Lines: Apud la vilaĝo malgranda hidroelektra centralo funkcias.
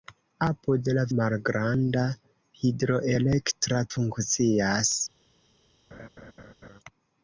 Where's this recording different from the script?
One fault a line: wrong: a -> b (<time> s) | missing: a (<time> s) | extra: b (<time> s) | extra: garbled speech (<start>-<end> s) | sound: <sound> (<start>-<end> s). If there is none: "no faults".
missing: vilaĝo (1.0 s)
missing: centralo (3.9 s)
sound: laugh (5.9-6.8 s)